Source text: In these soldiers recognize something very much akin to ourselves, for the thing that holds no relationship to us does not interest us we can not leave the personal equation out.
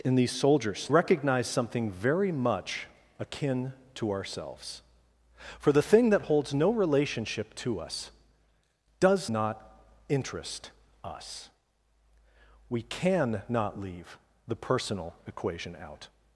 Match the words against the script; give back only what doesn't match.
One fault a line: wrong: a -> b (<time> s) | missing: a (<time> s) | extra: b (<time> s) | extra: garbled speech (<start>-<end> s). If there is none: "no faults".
no faults